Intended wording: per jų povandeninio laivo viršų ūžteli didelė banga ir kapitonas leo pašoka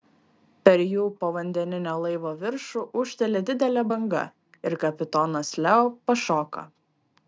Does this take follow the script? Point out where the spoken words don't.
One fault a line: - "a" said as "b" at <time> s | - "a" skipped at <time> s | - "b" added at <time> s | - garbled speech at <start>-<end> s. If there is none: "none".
none